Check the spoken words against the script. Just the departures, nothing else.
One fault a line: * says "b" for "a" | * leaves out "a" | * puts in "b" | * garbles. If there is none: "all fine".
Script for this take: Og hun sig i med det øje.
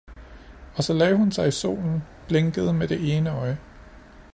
* puts in "så lagde"
* puts in "solen blinkede"
* puts in "ene"